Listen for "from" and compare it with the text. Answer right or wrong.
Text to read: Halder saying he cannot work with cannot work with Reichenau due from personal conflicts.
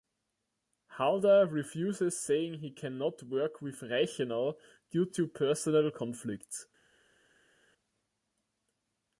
wrong